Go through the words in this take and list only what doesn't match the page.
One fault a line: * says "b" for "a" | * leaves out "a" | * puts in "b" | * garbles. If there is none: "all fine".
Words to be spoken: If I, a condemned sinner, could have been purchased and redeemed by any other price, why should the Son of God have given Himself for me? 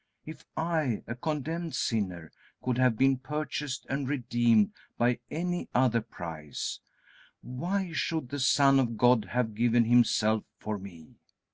all fine